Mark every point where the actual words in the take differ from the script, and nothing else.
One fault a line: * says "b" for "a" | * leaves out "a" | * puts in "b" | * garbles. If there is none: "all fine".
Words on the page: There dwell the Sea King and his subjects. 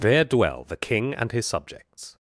* leaves out "Sea"